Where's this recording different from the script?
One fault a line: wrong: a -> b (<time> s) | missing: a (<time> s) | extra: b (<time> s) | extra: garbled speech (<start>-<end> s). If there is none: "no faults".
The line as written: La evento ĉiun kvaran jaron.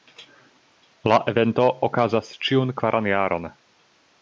extra: okazas (1.9 s)